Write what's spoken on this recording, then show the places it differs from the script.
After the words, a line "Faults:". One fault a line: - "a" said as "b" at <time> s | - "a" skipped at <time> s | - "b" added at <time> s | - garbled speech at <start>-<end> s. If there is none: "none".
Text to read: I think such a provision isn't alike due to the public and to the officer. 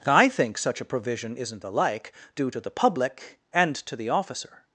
I think such a provision isn't alike due to the public and to the officer.
Faults:
none